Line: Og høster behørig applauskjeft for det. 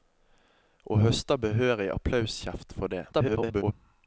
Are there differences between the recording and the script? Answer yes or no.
yes